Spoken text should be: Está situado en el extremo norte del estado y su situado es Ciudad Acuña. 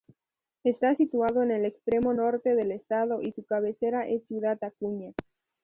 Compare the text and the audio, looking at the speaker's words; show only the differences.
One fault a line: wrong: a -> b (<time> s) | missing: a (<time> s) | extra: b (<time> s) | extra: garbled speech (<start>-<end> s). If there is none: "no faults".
wrong: situado -> cabecera (3.4 s)